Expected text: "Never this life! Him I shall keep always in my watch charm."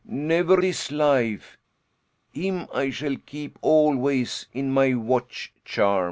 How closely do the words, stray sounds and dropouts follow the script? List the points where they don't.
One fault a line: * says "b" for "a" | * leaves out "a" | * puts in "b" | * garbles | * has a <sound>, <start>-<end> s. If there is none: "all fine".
all fine